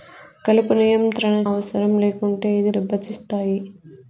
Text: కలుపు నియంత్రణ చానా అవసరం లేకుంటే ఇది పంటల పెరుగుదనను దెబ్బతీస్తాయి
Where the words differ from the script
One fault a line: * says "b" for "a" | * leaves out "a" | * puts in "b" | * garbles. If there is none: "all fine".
* leaves out "చానా"
* leaves out "పంటల పెరుగుదనను"